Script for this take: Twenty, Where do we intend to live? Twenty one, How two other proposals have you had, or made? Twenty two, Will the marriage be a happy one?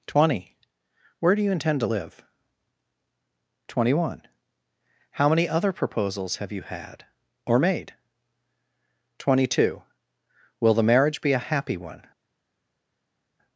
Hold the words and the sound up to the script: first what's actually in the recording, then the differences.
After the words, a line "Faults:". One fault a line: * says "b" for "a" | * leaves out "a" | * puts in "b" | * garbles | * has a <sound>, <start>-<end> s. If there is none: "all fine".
Twenty, Where do you intend to live? Twenty one, How many other proposals have you had, or made? Twenty two, Will the marriage be a happy one?
Faults:
* says "you" for "we"
* says "many" for "two"